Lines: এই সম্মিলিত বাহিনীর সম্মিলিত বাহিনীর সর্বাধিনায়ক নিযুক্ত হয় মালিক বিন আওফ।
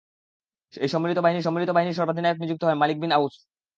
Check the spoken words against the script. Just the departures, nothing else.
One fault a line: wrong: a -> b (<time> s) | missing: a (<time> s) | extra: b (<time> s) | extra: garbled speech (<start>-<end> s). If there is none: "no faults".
no faults